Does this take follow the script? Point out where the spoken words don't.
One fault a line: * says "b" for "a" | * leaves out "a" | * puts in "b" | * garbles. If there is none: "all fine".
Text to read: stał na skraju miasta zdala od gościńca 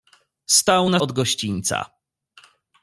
* leaves out "skraju miasta zdala"